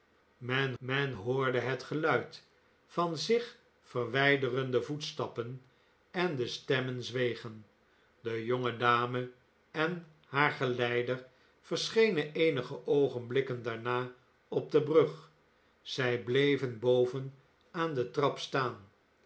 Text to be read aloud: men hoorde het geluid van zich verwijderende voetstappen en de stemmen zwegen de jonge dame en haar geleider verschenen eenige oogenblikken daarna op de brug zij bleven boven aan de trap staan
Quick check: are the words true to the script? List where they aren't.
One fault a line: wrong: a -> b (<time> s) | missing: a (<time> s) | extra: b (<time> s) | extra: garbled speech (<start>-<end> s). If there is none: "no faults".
extra: men (0.8 s)